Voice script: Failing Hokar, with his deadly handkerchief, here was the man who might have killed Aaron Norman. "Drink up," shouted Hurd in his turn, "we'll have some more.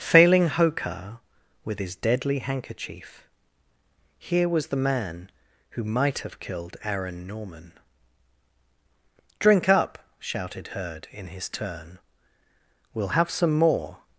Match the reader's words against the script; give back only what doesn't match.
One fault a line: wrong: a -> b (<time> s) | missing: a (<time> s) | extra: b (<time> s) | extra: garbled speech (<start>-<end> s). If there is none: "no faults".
no faults